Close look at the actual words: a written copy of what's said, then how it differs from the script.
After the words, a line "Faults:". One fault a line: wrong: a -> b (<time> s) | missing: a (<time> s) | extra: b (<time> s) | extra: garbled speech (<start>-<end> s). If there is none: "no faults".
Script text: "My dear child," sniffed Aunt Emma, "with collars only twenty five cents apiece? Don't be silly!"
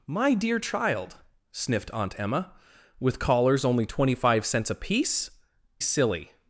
"My dear child," sniffed Aunt Emma, "with collars only twenty five cents apiece? Silly!"
Faults:
missing: Don't be (5.3 s)